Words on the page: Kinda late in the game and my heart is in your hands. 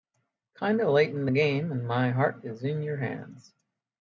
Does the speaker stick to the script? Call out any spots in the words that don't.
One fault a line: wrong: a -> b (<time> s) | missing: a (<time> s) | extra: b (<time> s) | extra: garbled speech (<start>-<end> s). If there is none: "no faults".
no faults